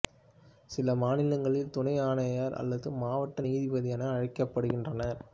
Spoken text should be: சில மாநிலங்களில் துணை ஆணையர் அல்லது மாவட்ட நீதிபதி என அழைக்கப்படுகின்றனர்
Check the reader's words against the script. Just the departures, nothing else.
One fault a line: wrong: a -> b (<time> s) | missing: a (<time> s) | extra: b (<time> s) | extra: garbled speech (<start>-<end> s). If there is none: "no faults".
no faults